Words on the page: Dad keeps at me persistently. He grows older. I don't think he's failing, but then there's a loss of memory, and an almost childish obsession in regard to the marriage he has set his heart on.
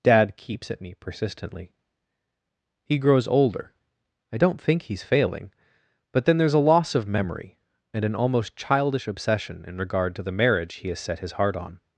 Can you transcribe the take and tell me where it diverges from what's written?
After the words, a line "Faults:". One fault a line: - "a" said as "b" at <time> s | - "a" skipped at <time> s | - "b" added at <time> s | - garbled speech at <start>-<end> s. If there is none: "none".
Dad keeps at me persistently. He grows older. I don't think he's failing, but then there's a loss of memory, and an almost childish obsession in regard to the marriage he has set his heart on.
Faults:
none